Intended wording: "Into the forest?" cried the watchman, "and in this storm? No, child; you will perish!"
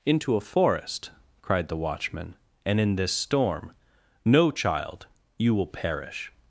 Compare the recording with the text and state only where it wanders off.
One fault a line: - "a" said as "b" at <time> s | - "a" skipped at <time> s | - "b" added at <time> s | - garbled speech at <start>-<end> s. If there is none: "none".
- "the" said as "a" at 0.3 s